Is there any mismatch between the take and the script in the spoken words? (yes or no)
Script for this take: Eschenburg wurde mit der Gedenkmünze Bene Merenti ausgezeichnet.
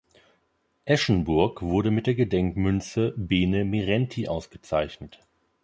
no